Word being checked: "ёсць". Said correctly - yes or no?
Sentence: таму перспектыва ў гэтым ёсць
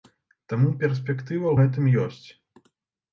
yes